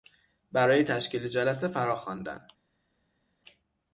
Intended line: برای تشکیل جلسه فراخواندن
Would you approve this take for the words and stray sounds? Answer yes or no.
yes